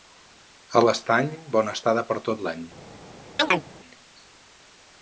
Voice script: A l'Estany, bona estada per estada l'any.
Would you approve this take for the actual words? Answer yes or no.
no